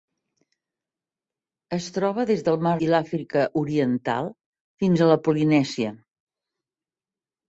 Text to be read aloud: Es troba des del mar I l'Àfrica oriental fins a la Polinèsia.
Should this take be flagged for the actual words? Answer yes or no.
no